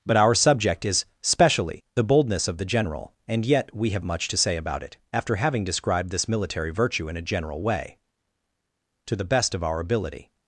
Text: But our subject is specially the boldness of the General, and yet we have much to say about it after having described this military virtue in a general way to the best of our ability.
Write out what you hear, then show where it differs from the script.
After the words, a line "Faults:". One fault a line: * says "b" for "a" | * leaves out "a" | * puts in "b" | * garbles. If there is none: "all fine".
But our subject is specially the boldness of the General, and yet we have much to say about it after having described this military virtue in a general way to the best of our ability.
Faults:
all fine